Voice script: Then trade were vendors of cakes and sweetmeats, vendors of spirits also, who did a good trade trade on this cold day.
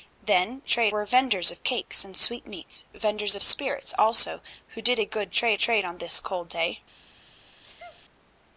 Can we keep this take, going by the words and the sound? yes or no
no